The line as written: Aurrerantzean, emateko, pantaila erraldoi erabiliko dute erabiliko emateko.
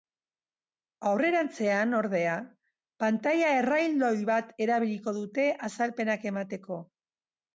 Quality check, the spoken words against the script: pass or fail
fail